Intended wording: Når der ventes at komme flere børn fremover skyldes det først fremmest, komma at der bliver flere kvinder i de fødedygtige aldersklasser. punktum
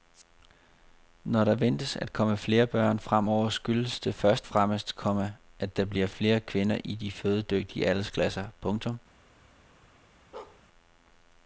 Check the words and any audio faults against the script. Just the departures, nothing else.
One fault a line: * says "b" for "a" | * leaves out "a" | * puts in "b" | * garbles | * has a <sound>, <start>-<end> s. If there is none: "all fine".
* has a bark, 10.3-10.6 s